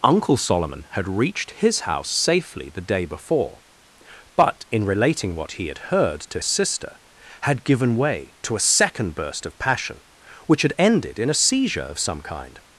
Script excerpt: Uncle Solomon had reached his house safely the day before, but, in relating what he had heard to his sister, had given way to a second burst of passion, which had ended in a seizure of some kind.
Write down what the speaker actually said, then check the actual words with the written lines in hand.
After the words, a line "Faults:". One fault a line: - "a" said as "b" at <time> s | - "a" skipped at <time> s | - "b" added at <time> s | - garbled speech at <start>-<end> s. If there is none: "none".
Uncle Solomon had reached his house safely the day before, but, in relating what he had heard to sister, had given way to a second burst of passion, which had ended in a seizure of some kind.
Faults:
- "his" skipped at 6.4 s